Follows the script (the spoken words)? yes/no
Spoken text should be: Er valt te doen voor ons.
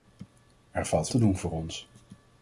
yes